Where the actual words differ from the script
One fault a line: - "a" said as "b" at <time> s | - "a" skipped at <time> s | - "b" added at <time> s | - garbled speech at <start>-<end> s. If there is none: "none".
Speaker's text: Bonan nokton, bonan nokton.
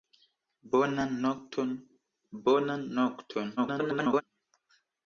- garbled speech at 3.6-4.2 s